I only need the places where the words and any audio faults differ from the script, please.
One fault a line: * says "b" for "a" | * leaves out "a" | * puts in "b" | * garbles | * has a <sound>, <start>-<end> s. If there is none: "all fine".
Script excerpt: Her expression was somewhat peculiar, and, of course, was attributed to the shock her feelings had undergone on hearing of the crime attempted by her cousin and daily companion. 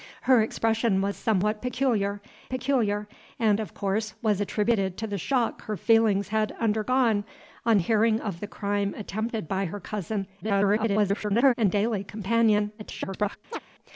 * puts in "peculiar"
* garbles
* garbles
* has a chirp, 13.5-13.6 s